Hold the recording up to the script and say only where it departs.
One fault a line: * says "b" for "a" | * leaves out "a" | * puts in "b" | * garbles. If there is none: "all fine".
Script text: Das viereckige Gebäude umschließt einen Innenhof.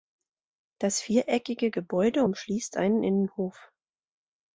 all fine